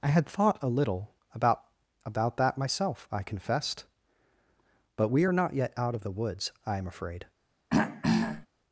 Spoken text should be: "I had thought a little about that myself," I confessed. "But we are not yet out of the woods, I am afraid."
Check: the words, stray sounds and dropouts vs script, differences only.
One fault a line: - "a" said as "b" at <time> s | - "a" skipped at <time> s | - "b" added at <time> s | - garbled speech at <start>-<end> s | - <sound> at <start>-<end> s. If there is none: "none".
- "about" added at 2.1 s
- throat clearing at 7.7-8.5 s